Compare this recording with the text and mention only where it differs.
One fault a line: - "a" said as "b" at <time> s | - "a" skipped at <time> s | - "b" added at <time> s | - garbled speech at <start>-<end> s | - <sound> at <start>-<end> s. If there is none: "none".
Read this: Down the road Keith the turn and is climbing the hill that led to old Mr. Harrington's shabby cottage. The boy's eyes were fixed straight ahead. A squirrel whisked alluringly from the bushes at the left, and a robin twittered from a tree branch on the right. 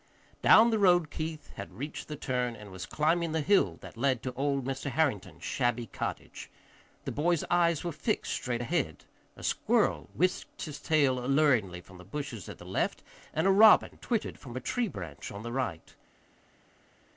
- "had reached" added at 1.6 s
- "is" said as "was" at 2.7 s
- "his tail" added at 10.6 s